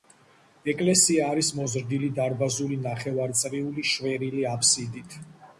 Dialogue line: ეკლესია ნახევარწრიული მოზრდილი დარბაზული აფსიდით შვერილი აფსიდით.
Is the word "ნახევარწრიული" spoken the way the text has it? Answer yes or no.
no